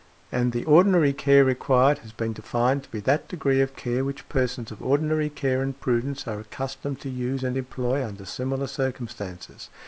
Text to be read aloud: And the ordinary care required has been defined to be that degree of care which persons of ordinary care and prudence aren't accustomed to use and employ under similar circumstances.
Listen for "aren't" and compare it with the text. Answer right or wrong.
wrong